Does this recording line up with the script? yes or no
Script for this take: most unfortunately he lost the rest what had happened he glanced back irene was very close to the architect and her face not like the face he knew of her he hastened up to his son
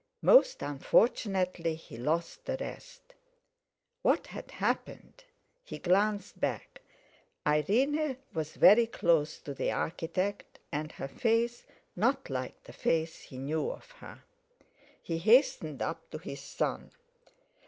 yes